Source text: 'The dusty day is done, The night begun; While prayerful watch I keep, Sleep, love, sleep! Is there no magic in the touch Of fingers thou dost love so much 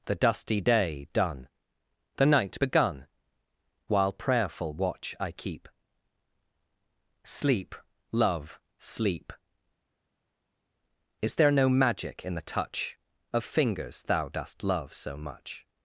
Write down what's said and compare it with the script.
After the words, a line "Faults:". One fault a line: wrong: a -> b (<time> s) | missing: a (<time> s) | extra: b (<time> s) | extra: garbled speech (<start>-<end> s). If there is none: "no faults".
'The dusty day done, The night begun; While prayerful watch I keep, Sleep, love, sleep! Is there no magic in the touch Of fingers thou dost love so much
Faults:
missing: is (1.1 s)